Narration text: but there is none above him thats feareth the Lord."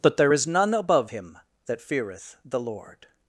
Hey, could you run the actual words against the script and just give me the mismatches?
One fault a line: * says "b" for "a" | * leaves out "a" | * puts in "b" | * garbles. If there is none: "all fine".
* says "that" for "thats"